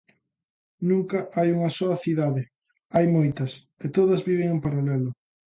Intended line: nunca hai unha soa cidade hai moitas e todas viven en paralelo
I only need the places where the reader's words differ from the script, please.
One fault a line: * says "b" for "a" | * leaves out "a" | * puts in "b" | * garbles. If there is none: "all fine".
all fine